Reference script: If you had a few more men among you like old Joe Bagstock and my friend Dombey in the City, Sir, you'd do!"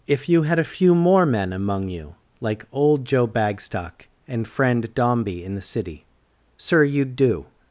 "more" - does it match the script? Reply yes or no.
yes